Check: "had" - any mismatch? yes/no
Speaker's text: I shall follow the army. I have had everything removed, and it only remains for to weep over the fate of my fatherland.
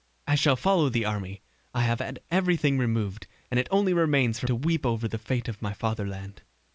no